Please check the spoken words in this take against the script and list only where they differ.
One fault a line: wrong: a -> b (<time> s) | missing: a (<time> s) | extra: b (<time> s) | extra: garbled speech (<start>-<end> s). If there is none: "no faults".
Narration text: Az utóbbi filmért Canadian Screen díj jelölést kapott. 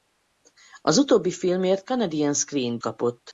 missing: díj jelölést (2.8 s)